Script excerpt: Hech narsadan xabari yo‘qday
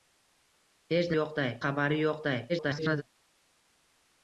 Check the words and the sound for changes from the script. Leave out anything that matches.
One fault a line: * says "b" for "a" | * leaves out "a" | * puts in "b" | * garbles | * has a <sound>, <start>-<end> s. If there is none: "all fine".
* says "yo‘qday" for "narsadan"
* garbles